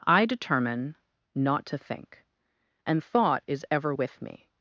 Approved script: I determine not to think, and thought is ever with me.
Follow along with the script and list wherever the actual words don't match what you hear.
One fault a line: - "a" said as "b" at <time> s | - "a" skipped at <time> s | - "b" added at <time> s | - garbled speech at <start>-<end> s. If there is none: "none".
none